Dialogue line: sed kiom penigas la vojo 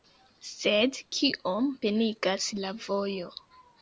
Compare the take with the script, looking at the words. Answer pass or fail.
pass